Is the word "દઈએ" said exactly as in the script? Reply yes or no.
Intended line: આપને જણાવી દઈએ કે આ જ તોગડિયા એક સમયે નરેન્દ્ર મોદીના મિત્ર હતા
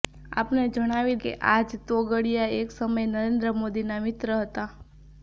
no